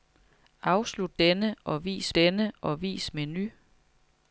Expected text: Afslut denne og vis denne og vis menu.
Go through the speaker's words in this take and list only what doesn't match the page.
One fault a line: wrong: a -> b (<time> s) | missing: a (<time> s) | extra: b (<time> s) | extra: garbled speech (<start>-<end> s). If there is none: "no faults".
no faults